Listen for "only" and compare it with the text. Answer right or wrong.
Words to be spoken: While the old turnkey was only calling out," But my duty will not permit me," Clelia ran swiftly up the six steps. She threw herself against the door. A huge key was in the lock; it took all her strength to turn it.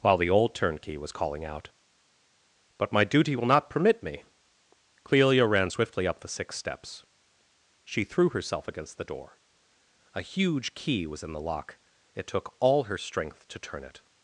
wrong